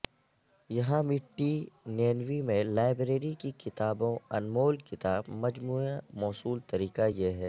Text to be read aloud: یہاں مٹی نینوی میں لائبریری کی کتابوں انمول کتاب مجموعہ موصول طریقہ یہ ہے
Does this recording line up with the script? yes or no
yes